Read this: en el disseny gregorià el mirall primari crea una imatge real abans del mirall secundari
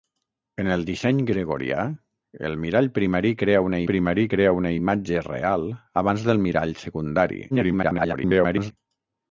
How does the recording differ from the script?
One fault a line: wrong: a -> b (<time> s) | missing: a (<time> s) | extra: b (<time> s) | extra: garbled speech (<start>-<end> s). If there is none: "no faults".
extra: primari crea una (3.9 s)
extra: garbled speech (7.5-8.7 s)